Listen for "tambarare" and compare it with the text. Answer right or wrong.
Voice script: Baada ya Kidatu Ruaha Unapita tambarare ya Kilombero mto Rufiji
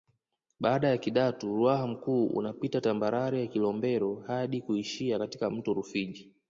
right